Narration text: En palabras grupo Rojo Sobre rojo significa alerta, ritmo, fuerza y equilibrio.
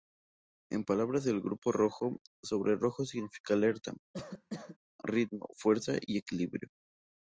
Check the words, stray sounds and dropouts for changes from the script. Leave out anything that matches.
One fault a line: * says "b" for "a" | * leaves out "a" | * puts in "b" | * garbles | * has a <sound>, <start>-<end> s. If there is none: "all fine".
* puts in "del"
* has a cough, 4.1-4.8 s